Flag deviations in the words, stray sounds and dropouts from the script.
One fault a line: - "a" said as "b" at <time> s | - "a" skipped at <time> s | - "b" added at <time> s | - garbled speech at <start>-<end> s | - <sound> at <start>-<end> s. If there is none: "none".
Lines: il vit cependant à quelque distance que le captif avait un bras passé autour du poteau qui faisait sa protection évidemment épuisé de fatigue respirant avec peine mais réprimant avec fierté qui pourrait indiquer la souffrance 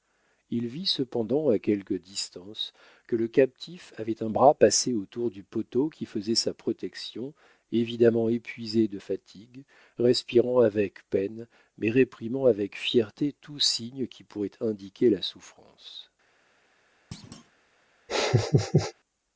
- "tout signe" added at 13.4 s
- thud at 17.1-17.5 s
- laugh at 18.1-18.9 s